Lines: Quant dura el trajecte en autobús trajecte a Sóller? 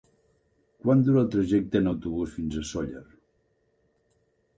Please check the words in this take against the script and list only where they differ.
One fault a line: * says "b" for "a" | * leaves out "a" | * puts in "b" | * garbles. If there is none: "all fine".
* says "fins" for "trajecte"